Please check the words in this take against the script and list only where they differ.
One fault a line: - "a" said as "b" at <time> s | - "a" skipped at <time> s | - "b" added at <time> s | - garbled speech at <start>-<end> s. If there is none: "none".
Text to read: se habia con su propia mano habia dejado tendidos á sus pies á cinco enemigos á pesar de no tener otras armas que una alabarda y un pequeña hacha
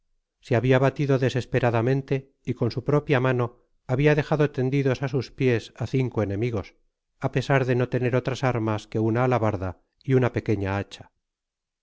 - "batido desesperadamente y" added at 0.8 s
- "un" said as "una" at 10.2 s